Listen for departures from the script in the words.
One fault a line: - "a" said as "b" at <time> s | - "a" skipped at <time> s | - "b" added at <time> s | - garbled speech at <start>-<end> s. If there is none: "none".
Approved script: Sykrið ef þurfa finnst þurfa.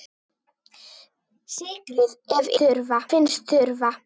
none